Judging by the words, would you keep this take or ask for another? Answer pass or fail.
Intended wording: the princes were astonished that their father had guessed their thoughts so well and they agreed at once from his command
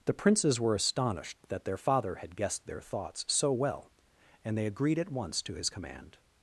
fail